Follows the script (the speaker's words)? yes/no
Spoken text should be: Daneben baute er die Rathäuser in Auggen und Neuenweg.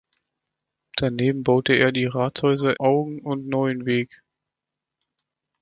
no